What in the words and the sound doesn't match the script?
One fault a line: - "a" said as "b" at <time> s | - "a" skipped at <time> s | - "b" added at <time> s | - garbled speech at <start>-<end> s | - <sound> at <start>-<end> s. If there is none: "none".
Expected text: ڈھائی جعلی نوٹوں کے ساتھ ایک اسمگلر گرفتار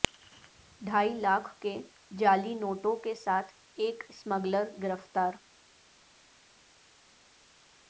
- "لاکھ کے" added at 1.1 s